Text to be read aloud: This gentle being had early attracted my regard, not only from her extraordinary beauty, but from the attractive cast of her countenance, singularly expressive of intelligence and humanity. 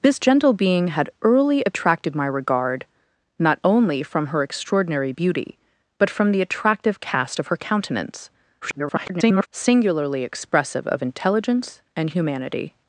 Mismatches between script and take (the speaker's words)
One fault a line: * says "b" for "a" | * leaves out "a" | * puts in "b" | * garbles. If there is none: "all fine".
* garbles